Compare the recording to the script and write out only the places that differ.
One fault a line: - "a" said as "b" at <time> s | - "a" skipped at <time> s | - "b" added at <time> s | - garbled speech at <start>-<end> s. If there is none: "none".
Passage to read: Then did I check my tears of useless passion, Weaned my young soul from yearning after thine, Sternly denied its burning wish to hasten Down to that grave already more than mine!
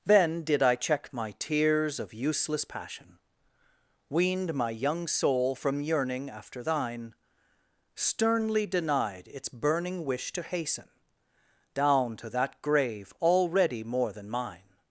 none